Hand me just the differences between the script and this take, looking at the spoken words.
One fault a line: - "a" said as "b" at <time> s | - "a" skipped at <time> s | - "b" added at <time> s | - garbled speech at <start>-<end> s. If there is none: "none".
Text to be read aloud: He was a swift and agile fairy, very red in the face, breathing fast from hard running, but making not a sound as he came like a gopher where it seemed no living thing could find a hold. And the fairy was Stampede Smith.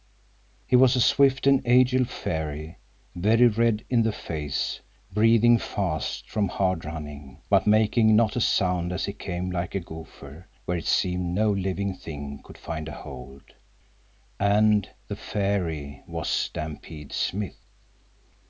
none